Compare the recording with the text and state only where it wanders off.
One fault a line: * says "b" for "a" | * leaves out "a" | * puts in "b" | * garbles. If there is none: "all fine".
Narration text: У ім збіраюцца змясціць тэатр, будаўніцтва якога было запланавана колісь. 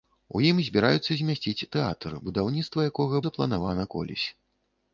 * leaves out "было"